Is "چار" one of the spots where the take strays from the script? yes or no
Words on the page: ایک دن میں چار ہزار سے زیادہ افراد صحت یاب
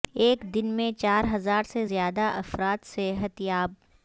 no